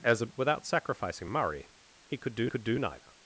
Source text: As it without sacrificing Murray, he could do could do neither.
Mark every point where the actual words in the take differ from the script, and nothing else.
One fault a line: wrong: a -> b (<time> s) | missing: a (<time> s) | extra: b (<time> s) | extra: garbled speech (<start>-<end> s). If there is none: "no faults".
no faults